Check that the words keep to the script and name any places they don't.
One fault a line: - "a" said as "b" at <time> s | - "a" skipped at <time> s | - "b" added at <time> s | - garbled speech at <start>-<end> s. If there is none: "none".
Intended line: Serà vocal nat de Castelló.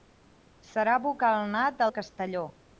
none